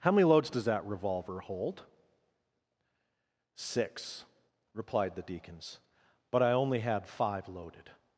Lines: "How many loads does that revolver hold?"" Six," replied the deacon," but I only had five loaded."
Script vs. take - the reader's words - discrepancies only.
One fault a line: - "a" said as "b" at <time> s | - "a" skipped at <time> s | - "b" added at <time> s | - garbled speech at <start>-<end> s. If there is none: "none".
- "deacon" said as "deacons" at 5.2 s